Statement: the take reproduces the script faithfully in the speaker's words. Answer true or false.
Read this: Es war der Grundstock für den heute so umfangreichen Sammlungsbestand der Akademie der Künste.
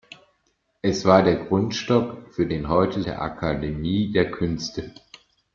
false